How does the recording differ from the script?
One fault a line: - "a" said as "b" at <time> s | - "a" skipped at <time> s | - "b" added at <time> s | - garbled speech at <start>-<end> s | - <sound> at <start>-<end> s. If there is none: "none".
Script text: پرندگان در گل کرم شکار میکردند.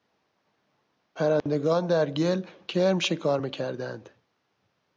- dropout at 1.4-1.5 s